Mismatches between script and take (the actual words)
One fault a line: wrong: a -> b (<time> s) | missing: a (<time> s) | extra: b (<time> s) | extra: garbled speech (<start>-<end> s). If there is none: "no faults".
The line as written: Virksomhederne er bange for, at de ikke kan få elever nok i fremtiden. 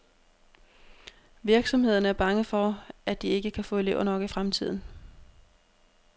no faults